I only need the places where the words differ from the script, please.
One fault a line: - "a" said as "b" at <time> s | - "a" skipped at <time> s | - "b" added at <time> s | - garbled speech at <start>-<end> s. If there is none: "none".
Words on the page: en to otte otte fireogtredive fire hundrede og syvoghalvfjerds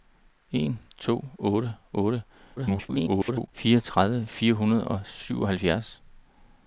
- garbled speech at 2.6-3.5 s